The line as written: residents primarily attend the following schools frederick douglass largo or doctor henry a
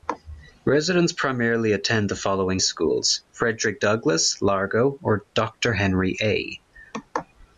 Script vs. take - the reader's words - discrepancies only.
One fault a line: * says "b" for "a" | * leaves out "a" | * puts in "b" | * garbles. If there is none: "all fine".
all fine